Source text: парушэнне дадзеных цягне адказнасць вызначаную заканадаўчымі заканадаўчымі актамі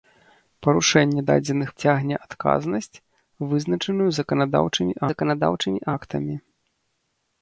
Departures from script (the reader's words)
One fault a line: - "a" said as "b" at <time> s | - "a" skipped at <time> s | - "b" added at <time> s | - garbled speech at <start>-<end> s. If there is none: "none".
none